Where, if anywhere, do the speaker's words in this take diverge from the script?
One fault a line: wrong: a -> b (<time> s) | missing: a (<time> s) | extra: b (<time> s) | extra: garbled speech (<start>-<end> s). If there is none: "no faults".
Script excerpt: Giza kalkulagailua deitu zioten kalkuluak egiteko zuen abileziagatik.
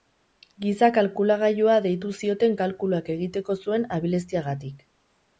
no faults